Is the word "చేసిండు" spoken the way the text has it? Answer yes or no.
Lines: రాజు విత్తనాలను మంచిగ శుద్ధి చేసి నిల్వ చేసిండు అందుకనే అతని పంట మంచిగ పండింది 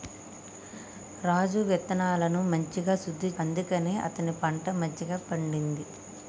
no